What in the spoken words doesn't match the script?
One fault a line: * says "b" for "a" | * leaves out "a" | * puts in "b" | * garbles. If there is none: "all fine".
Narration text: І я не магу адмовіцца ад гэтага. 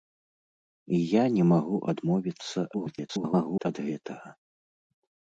* garbles